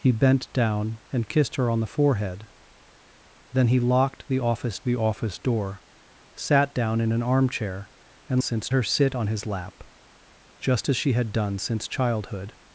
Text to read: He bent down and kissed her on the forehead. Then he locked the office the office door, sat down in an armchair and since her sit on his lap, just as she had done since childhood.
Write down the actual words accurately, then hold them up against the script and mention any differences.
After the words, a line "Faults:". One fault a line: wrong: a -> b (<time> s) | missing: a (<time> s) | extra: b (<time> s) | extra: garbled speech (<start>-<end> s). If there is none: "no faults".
He bent down and kissed her on the forehead. Then he locked the office the office door, sat down in an armchair and since her sit on his lap, just as she had done since childhood.
Faults:
no faults